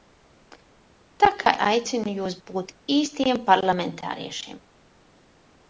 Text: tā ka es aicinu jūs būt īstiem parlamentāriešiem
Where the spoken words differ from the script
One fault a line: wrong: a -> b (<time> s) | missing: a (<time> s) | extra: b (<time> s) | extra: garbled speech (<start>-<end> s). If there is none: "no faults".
missing: es (1.5 s)